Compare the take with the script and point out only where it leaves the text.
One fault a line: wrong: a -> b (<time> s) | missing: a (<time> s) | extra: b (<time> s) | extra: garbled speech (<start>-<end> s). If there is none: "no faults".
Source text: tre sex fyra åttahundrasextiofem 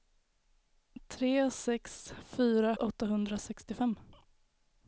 no faults